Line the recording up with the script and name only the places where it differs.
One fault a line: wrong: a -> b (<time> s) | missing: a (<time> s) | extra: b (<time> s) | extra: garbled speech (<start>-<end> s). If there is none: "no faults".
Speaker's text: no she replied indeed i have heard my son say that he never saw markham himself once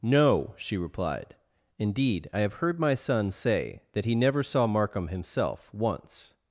no faults